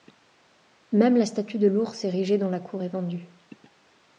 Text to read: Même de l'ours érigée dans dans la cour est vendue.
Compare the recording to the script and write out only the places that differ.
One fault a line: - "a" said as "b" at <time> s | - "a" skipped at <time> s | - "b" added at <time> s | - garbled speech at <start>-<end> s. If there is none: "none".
- "la statue" added at 1.1 s
- "dans" skipped at 2.5 s